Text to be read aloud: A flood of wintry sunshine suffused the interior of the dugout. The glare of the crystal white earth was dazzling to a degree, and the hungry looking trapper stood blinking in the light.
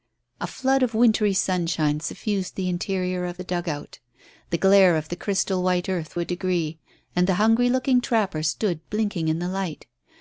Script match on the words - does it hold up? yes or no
no